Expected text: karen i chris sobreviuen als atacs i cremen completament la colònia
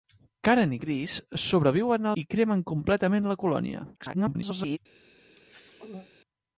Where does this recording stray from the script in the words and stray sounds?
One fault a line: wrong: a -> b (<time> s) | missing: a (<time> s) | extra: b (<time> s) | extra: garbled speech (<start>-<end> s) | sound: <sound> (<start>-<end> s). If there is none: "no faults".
missing: als atacs (2.1 s)
extra: garbled speech (4.0-4.8 s)
sound: throat clearing (5.4-6.1 s)